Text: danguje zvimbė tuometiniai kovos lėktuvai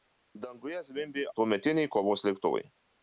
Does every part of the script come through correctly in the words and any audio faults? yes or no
yes